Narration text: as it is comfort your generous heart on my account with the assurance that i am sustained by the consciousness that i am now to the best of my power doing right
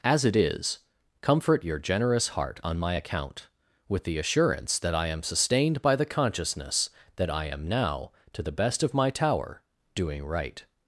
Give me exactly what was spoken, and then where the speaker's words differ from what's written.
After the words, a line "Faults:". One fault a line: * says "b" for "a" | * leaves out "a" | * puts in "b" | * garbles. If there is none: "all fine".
as it is comfort your generous heart on my account with the assurance that i am sustained by the consciousness that i am now to the best of my tower doing right
Faults:
* says "tower" for "power"